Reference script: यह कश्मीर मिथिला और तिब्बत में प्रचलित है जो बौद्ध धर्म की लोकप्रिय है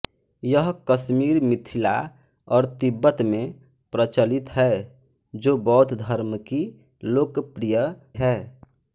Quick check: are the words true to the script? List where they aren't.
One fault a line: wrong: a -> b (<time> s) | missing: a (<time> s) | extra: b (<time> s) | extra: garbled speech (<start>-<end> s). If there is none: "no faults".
no faults